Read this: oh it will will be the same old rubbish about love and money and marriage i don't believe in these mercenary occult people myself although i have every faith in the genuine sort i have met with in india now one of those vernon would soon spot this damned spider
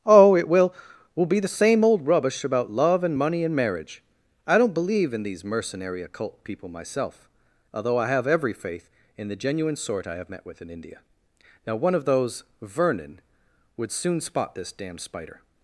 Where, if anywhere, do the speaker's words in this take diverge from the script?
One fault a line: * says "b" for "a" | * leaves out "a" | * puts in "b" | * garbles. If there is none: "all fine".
all fine